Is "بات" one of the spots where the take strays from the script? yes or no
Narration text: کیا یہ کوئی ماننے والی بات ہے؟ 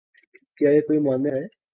yes